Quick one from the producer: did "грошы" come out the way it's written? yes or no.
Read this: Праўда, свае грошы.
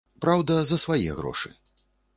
yes